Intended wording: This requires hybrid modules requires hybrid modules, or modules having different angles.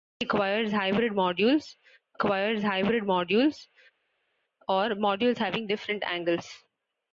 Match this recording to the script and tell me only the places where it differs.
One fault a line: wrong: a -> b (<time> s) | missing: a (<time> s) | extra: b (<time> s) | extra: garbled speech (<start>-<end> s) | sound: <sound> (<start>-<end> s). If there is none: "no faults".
no faults